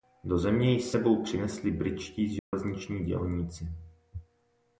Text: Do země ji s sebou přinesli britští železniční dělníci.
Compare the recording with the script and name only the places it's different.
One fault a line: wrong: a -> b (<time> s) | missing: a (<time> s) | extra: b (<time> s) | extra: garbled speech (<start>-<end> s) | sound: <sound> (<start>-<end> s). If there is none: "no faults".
sound: dropout (2.4-2.5 s)